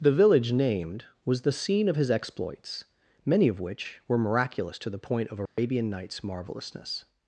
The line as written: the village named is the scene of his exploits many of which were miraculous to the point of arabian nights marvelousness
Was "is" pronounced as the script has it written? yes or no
no